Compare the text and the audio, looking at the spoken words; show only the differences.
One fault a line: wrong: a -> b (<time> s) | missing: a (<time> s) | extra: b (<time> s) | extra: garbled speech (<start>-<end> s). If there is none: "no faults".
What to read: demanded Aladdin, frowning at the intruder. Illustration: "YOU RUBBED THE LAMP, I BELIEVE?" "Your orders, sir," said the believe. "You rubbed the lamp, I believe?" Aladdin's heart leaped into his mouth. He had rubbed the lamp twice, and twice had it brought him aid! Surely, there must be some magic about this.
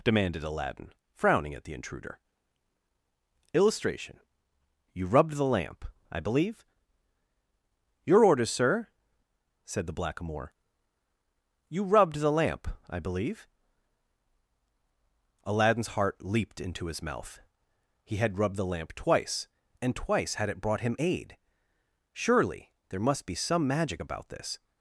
wrong: believe -> blackamoor (9.9 s)